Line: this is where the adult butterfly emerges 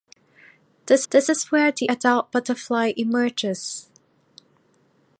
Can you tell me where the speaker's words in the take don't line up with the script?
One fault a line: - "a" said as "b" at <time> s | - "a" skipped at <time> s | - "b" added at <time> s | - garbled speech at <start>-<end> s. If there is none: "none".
- "this" added at 1.1 s